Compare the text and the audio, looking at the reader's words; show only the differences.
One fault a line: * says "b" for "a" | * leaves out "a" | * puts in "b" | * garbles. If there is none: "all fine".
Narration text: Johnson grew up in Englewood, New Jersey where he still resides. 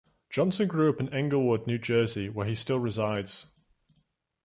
all fine